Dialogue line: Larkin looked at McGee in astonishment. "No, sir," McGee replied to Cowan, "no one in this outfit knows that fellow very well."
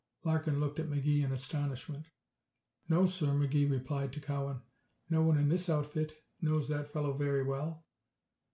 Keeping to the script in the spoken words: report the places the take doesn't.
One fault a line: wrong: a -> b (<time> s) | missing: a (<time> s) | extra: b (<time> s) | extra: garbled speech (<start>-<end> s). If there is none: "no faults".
no faults